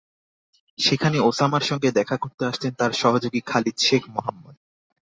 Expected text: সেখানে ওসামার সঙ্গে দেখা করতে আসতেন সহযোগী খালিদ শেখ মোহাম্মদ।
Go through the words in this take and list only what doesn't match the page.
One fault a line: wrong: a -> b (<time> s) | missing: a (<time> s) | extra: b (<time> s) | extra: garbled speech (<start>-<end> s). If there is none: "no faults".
extra: তাঁর (2.7 s)